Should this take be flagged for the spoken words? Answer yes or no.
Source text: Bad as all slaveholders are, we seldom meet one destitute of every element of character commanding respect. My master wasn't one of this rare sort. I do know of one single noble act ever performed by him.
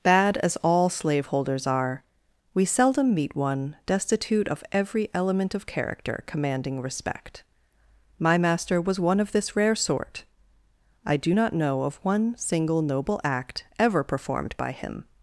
yes